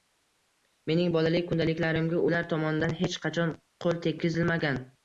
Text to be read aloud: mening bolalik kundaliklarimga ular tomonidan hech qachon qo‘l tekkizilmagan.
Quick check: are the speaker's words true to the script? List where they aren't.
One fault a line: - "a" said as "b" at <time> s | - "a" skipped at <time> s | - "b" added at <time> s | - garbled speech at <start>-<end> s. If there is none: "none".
none